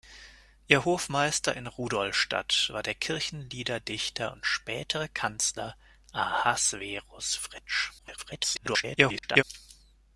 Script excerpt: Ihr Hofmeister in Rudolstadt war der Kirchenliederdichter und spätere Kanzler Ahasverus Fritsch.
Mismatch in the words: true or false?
true